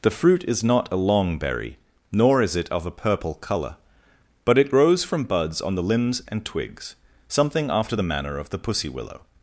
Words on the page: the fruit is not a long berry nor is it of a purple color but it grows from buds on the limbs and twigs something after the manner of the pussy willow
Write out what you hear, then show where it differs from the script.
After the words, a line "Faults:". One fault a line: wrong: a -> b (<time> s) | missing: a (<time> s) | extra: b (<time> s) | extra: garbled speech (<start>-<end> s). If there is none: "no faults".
the fruit is not a long berry nor is it of a purple color but it grows from buds on the limbs and twigs something after the manner of the pussy willow
Faults:
no faults